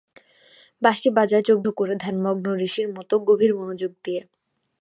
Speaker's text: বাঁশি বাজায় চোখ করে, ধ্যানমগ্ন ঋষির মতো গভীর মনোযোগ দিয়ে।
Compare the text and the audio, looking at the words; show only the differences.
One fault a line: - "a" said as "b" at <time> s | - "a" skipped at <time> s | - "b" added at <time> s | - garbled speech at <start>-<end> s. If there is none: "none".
none